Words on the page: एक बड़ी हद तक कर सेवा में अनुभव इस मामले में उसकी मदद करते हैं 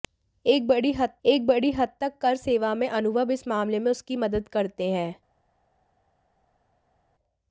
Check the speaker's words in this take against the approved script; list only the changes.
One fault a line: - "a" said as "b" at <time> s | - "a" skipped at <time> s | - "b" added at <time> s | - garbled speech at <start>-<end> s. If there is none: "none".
- "एक बड़ी हद" added at 1.2 s